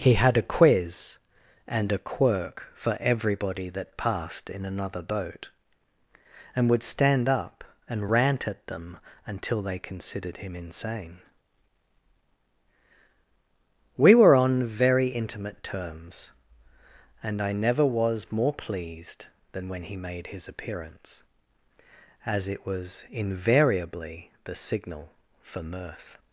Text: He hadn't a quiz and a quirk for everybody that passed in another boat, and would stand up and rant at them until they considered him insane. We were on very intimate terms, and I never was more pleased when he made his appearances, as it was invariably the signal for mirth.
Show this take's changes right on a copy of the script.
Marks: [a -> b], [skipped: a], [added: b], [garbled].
He [hadn't -> had] a quiz and a quirk for everybody that passed in another boat, and would stand up and rant at them until they considered him insane. We were on very intimate terms, and I never was more pleased [added: than] when he made his [appearances, -> appearance] as it was invariably the signal for mirth.